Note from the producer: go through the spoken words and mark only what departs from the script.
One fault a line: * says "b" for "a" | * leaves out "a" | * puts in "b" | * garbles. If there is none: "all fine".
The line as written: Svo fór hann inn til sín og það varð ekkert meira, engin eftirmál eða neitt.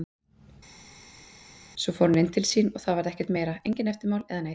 all fine